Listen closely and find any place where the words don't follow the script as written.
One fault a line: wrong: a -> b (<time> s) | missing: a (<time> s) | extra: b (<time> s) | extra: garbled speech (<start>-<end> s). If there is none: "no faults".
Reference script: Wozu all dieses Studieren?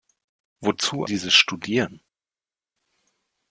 missing: all (1.1 s)